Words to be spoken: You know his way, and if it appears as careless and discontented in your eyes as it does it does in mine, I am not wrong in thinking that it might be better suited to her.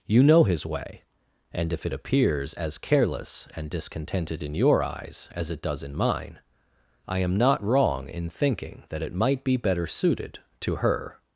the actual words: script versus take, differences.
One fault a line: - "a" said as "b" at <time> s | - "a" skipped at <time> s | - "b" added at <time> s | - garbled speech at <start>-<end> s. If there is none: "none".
- "it does" skipped at 5.8 s